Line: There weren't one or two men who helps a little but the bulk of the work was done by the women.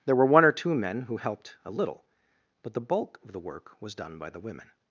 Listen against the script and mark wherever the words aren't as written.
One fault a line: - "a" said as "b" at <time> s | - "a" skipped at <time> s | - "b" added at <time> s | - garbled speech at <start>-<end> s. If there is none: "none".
- "weren't" said as "were" at 0.1 s
- "helps" said as "helped" at 1.2 s